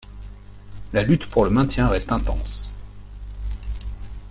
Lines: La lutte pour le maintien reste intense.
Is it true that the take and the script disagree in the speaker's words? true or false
false